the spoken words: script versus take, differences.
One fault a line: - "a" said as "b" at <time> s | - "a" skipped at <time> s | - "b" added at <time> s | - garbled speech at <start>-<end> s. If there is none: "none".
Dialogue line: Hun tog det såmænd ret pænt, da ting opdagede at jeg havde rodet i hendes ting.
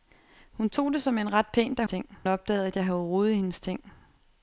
none